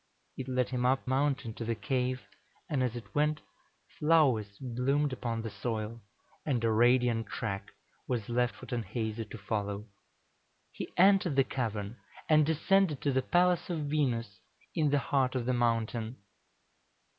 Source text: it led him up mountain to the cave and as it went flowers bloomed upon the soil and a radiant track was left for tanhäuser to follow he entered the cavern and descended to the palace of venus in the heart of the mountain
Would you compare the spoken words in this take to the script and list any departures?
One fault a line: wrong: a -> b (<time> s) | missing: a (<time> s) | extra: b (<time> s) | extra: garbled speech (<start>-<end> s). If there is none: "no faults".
no faults